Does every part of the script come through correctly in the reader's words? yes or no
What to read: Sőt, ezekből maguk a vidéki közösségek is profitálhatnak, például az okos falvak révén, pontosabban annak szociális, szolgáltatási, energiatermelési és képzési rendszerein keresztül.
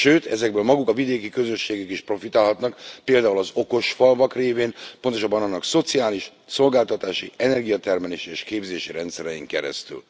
yes